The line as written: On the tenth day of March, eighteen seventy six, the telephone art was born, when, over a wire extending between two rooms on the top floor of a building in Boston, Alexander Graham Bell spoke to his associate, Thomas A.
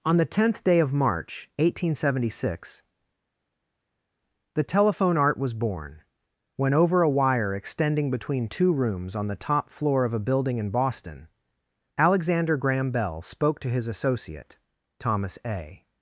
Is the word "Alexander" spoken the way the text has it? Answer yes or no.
yes